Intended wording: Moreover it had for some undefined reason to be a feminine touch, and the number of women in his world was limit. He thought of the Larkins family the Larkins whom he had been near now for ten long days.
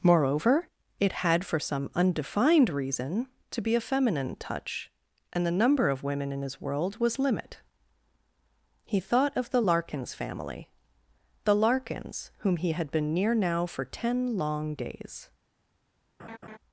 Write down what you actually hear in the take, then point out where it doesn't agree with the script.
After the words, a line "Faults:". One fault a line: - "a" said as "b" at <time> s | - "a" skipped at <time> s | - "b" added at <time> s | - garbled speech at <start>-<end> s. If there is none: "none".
Moreover it had for some undefined reason to be a feminine touch, and the number of women in his world was limit. He thought of the Larkins family the Larkins whom he had been near now for ten long days.
Faults:
none